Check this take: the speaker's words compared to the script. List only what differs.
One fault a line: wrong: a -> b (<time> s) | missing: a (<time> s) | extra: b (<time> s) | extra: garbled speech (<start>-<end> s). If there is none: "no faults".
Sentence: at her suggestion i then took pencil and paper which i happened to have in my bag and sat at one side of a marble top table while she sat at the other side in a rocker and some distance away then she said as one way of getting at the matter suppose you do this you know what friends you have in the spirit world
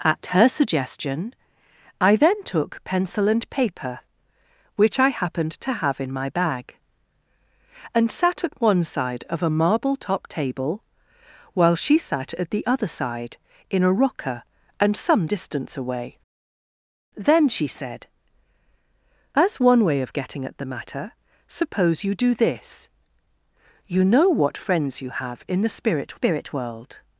extra: spirit (26.1 s)